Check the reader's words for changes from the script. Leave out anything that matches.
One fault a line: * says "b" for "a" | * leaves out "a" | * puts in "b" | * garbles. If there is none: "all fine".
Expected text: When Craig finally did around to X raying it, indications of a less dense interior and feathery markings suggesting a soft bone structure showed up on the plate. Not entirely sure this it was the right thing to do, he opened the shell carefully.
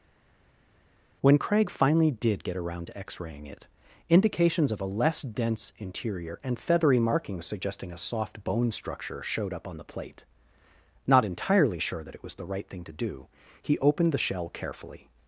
* puts in "get"
* says "that" for "this"